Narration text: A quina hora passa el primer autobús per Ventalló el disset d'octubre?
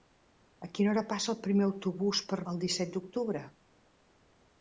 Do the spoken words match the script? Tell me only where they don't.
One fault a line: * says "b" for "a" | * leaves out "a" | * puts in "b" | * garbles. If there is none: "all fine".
* leaves out "Ventalló"